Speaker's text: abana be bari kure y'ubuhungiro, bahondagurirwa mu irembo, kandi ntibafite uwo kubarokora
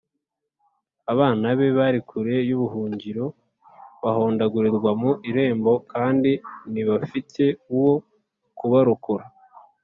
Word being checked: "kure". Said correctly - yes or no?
yes